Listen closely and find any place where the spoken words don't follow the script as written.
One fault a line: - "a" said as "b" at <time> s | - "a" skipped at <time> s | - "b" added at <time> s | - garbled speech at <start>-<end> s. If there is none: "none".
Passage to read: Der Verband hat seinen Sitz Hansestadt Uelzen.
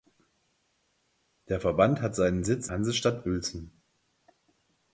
none